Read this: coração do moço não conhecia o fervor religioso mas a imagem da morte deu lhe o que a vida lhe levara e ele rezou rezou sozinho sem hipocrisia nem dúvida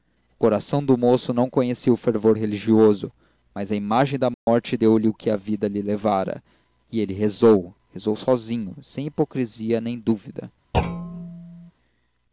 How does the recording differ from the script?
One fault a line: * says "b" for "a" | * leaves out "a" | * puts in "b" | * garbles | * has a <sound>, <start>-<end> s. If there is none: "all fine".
* has a dropout, 4.3-4.5 s
* has a thud, 10.7-11.7 s